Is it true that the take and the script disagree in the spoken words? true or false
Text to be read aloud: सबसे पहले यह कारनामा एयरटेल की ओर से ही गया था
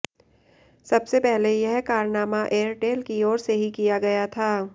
true